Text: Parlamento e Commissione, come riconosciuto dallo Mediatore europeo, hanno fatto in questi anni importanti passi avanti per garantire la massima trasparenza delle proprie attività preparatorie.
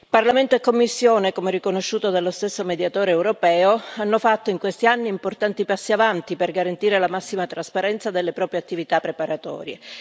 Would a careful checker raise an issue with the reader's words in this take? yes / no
yes